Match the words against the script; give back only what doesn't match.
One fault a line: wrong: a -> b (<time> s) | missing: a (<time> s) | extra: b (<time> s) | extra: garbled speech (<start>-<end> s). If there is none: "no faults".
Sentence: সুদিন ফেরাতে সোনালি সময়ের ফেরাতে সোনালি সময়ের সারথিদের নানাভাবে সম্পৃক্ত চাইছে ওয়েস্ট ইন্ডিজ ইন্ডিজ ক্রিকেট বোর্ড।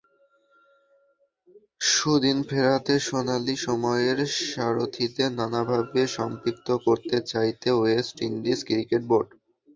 missing: ফেরাতে সোনালি সময়ের (4.2 s)
extra: করতে (6.8 s)
missing: ইন্ডিজ (8.6 s)